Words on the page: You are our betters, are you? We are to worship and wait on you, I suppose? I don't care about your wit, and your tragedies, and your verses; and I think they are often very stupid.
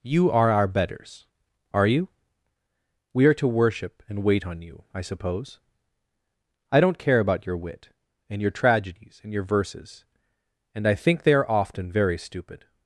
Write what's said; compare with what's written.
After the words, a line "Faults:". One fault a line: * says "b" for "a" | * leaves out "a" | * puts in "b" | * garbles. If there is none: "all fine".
You are our betters, are you? We are to worship and wait on you, I suppose? I don't care about your wit, and your tragedies, and your verses; and I think they are often very stupid.
Faults:
all fine